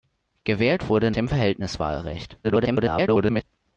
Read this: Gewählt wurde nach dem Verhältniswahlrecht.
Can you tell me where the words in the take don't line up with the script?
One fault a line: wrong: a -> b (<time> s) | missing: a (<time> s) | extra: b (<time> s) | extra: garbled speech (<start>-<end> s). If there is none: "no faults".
missing: nach (1.1 s)
extra: garbled speech (2.4-3.4 s)